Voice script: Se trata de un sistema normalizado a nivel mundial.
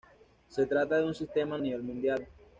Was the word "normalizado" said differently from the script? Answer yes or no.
yes